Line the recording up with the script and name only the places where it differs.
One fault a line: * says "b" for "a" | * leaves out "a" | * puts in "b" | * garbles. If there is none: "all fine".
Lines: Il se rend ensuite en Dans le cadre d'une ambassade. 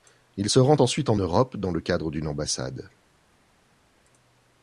* puts in "Europe"